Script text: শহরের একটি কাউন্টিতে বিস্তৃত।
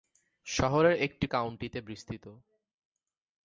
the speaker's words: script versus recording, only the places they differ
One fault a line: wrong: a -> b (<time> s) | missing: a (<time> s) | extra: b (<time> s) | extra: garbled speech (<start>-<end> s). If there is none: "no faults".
no faults